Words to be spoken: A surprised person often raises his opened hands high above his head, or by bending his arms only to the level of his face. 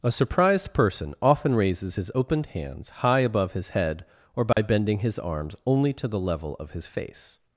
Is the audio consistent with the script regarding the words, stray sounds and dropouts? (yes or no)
no